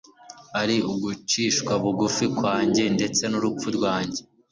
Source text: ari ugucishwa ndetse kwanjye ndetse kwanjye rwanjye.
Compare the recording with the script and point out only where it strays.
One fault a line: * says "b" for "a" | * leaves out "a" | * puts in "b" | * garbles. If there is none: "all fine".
* says "bugufi" for "ndetse"
* says "n'urupfu" for "kwanjye"